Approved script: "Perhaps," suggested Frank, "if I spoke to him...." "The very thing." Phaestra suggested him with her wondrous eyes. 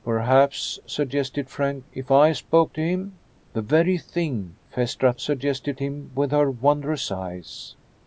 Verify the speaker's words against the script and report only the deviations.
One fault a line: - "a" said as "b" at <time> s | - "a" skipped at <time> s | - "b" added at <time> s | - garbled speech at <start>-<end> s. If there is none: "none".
none